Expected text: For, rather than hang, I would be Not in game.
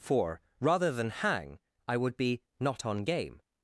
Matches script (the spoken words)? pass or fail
fail